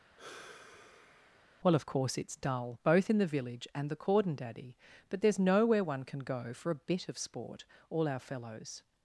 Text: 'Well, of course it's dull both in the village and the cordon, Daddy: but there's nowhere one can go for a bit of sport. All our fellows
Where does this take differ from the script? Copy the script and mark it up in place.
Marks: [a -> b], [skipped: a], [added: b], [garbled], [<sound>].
[sigh] 'Well, of course it's dull both in the village and the cordon, Daddy: but there's nowhere one can go for a bit of sport. All our fellows